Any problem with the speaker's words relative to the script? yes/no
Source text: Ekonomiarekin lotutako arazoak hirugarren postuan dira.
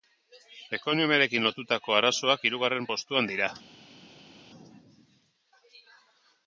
no